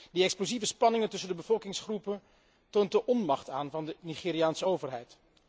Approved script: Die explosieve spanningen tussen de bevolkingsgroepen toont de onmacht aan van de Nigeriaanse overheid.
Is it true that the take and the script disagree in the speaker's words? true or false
false